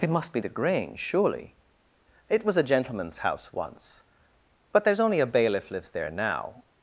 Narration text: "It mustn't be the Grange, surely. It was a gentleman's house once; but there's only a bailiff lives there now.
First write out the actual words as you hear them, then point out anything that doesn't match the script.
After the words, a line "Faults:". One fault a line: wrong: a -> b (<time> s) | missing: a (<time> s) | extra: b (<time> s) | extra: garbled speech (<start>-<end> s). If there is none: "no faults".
"It must be the Grange, surely. It was a gentleman's house once; but there's only a bailiff lives there now.
Faults:
wrong: mustn't -> must (0.1 s)